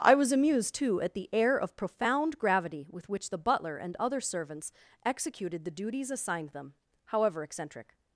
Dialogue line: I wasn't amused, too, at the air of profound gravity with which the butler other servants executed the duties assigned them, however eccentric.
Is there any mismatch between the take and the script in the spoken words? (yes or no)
yes